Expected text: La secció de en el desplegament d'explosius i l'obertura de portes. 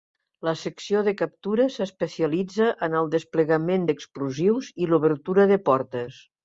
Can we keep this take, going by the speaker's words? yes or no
no